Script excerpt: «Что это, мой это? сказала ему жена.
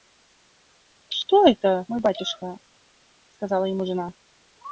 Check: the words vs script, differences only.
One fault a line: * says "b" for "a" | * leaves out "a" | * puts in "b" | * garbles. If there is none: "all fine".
* says "батюшка" for "это"